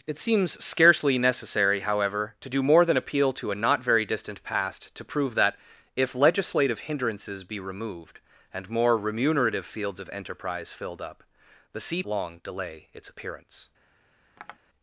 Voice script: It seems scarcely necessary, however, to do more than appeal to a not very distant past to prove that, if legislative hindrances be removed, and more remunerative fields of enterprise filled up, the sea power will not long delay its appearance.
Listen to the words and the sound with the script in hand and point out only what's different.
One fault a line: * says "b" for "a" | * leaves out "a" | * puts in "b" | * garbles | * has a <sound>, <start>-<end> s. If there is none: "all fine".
* leaves out "power will not"
* has a tap, 14.4-14.6 s